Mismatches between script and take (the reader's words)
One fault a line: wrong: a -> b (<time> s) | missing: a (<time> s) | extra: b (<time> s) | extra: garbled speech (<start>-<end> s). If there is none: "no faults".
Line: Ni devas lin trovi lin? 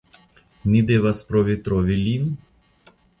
wrong: lin -> provi (1.3 s)